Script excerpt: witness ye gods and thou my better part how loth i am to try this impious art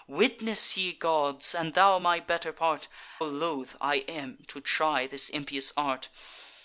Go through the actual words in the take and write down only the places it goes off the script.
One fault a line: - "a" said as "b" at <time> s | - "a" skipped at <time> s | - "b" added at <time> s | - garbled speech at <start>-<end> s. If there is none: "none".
- "how" skipped at 2.9 s